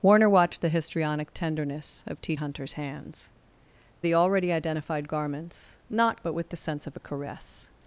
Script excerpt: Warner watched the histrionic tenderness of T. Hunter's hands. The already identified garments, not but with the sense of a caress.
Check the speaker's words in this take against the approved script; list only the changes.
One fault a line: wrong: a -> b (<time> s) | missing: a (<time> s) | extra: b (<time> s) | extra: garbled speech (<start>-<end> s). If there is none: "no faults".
no faults